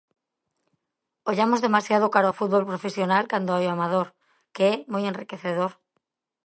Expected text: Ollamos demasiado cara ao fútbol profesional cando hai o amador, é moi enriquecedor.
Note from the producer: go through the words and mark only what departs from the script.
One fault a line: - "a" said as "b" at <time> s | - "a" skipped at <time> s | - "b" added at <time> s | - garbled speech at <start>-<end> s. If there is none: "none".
- "que" added at 4.5 s